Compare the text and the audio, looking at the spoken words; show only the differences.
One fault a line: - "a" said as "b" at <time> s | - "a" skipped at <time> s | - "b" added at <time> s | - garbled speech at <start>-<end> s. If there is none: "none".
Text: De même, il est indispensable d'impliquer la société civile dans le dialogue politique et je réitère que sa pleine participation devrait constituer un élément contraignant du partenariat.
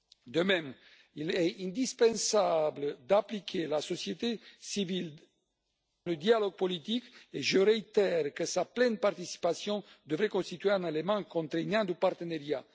- "dans" skipped at 5.2 s